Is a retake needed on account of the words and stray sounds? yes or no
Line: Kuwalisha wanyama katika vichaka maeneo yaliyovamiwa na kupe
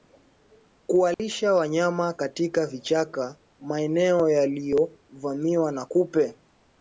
yes